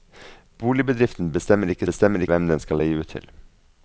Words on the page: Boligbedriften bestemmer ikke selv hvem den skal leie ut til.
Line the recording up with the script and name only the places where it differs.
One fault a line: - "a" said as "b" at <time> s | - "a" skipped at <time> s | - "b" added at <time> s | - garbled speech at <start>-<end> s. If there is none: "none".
- "selv" said as "bestemmer" at 1.8 s